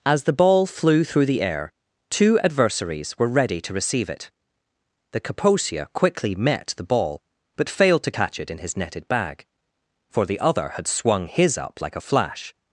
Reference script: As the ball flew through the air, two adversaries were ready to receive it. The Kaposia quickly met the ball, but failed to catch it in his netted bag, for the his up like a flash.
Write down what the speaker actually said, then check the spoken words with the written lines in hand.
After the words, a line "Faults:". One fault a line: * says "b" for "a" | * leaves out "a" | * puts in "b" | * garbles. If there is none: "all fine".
As the ball flew through the air, two adversaries were ready to receive it. The Kaposia quickly met the ball, but failed to catch it in his netted bag, for the other had swung his up like a flash.
Faults:
* puts in "other had swung"